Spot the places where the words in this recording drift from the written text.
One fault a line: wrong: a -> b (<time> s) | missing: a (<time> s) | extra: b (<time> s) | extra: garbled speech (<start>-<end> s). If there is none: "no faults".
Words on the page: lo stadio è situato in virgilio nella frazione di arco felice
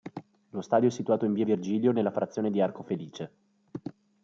extra: via (1.3 s)